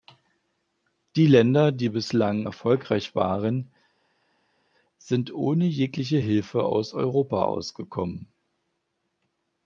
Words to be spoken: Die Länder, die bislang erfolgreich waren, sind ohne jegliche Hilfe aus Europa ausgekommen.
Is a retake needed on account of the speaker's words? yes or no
no